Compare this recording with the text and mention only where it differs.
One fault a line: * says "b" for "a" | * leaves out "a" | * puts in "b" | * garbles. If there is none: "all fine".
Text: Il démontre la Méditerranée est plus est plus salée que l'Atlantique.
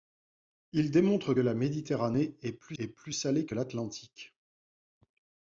all fine